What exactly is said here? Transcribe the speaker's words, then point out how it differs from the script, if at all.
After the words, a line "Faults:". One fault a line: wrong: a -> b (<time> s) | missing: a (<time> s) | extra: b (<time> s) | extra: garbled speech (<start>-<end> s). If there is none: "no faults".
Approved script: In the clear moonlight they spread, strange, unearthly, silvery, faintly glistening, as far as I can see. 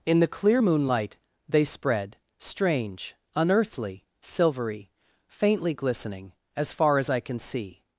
In the clear moonlight they spread, strange, unearthly, silvery, faintly glistening, as far as I can see.
Faults:
no faults